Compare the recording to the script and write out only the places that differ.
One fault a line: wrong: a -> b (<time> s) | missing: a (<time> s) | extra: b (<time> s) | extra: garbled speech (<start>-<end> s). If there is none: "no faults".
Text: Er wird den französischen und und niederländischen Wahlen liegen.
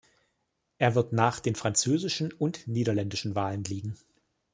extra: nach (1.1 s)
missing: und (2.7 s)